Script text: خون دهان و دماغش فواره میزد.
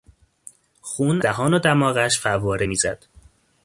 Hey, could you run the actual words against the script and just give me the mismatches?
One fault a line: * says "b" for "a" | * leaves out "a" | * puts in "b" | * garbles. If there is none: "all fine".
all fine